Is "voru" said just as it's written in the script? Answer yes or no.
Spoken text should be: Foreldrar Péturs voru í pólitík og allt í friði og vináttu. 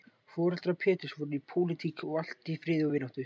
yes